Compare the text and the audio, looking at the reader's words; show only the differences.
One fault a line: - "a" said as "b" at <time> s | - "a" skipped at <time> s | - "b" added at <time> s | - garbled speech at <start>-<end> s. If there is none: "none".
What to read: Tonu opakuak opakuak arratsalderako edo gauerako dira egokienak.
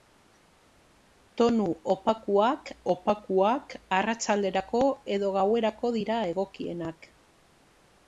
none